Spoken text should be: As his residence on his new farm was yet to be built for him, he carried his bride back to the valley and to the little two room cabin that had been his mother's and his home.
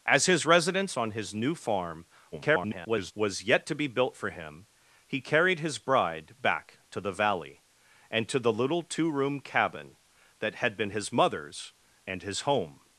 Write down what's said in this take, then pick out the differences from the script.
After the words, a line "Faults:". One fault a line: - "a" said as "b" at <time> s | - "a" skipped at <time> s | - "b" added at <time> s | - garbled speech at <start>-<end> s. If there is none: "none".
As his residence on his new farm [garbled] was yet to be built for him, he carried his bride back to the valley and to the little two room cabin that had been his mother's and his home.
Faults:
- garbled speech at 2.3-3.1 s